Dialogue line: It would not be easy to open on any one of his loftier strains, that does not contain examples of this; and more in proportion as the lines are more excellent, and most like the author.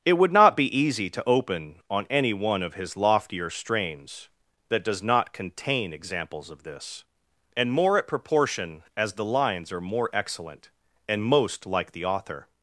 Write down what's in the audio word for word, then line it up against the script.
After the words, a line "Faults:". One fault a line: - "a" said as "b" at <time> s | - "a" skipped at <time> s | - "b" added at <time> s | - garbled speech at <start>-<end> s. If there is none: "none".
It would not be easy to open on any one of his loftier strains, that does not contain examples of this; and more at proportion as the lines are more excellent, and most like the author.
Faults:
- "in" said as "at" at 8.0 s